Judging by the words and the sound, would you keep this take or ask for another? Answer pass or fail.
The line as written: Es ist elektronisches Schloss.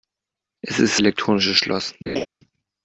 fail